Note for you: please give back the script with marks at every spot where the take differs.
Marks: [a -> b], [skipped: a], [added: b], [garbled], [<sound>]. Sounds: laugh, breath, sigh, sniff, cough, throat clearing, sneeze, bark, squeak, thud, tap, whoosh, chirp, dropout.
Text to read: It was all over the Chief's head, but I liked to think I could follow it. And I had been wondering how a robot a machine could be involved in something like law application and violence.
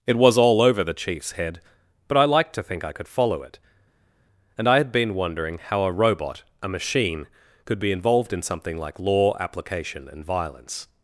It was all over the Chief's head, but I liked to think I could follow it. And I had been wondering how a robot a machine could be involved in something like law application and violence.